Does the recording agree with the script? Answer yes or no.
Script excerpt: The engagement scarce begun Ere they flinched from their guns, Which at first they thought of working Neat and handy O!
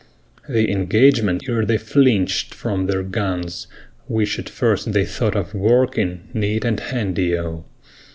no